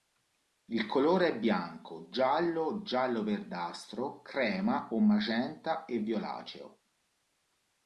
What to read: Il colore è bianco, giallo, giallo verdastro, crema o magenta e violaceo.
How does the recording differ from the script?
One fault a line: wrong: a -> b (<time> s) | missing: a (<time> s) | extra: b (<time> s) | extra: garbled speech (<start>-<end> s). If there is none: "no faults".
no faults